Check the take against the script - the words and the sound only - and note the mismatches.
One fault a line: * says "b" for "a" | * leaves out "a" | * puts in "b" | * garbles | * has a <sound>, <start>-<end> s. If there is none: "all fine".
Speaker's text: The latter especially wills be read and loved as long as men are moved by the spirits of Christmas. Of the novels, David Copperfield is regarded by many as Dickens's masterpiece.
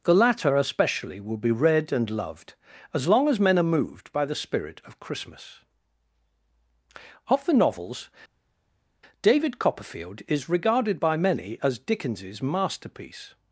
* says "will" for "wills"
* says "spirit" for "spirits"